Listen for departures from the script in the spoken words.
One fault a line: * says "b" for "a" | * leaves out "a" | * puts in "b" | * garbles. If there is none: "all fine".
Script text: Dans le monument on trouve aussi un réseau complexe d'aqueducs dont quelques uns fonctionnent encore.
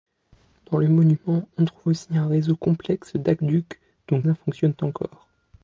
* leaves out "quelques"